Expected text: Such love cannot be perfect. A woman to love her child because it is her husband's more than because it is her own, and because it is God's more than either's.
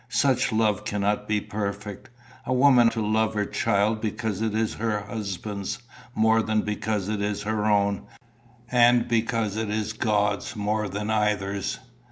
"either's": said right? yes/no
yes